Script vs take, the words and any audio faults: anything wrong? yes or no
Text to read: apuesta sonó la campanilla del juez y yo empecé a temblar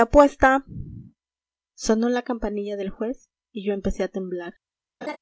yes